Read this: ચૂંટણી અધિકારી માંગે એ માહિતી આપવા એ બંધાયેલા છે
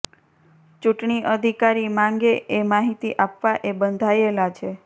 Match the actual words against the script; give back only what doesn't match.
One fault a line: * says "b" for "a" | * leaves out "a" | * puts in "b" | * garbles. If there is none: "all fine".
all fine